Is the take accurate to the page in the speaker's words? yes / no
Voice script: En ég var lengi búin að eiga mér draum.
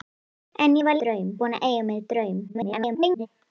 no